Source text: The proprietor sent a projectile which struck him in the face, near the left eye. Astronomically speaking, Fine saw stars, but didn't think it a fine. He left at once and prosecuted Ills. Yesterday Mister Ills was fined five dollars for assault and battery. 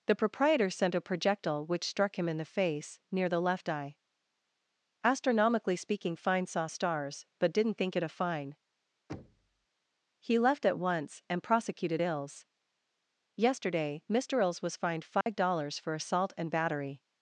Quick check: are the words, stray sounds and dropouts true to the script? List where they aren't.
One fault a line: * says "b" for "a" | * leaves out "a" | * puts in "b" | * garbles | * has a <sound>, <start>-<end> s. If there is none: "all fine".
* has a thud, 9.1-9.7 s
* has a dropout, 15.2-15.3 s